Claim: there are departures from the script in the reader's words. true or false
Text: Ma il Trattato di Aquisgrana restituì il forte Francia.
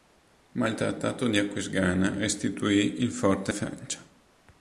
false